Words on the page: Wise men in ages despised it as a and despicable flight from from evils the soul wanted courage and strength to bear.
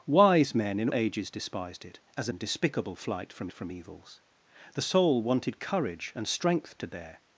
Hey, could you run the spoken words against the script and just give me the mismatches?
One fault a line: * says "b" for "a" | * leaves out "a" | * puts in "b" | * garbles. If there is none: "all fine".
all fine